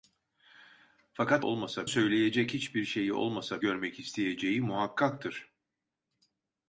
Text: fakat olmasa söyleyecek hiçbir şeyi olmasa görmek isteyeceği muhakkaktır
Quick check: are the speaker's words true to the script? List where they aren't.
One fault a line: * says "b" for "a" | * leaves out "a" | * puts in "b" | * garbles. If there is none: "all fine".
all fine